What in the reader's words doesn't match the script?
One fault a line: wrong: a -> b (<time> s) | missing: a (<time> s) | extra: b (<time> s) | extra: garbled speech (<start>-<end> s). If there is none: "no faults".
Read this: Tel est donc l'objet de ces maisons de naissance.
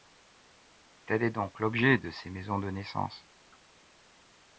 no faults